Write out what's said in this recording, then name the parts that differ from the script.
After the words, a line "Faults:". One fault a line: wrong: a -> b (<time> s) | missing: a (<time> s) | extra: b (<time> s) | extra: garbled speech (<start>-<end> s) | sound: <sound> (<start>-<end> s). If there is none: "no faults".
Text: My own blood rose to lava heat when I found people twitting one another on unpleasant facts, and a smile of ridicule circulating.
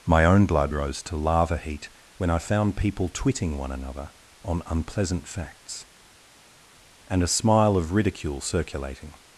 My own blood rose to lava heat when I found people twitting one another on unpleasant facts, and a smile of ridicule circulating.
Faults:
no faults